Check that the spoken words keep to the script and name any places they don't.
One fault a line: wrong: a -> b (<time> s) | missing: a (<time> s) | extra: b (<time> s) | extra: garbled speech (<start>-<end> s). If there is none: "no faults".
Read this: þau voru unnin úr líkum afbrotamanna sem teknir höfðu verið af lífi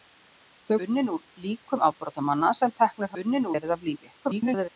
missing: voru (0.8 s)
wrong: höfðu -> unnin (3.2 s)
extra: garbled speech (4.2-4.7 s)